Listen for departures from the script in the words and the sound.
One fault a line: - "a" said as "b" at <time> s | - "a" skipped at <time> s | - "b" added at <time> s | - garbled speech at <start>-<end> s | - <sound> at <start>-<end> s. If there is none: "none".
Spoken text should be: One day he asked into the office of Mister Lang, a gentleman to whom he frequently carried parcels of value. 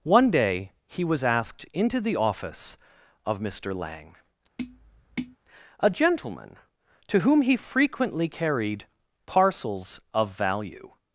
- "was" added at 1.0 s
- tap at 4.6-5.4 s